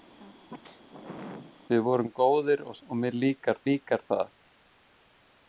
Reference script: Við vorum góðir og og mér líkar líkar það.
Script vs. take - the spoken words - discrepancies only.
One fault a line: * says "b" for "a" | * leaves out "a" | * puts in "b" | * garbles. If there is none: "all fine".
all fine